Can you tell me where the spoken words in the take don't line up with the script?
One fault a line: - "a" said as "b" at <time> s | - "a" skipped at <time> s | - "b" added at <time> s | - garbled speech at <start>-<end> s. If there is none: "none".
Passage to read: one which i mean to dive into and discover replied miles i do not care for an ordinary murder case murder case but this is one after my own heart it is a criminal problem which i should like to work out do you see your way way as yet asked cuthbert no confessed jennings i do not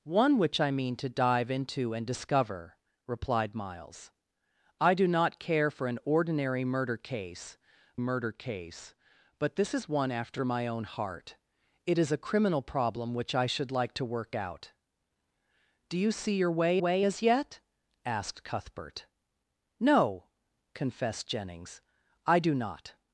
none